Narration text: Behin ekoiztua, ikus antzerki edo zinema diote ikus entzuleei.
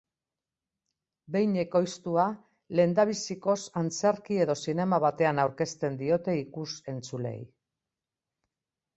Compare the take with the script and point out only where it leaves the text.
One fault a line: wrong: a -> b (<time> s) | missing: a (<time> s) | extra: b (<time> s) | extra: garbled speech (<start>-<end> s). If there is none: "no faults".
wrong: ikus -> lehendabizikoz (2.8 s)
extra: batean aurkezten (5.1 s)